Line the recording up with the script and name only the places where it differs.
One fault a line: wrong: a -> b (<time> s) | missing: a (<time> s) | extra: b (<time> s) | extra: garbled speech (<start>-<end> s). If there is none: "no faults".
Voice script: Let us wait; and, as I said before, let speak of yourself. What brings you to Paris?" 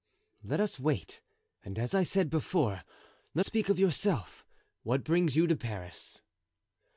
no faults